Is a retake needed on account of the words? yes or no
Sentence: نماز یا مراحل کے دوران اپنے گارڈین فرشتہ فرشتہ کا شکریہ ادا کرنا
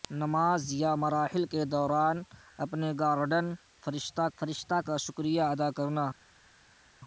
no